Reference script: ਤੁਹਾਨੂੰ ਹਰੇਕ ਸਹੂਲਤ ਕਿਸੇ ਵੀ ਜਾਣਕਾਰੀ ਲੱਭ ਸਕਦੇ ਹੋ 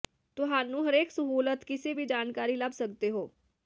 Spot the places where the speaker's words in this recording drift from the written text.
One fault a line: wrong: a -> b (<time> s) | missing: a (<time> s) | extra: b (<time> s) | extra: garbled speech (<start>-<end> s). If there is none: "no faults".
no faults